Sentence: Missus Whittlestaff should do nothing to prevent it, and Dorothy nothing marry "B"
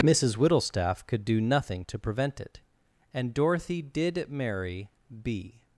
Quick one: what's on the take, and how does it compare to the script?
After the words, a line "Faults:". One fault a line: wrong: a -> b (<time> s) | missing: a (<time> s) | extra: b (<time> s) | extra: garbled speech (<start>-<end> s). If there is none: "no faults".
Missus Whittlestaff could do nothing to prevent it, and Dorothy did marry "B"
Faults:
wrong: should -> could (1.1 s)
wrong: nothing -> did (3.8 s)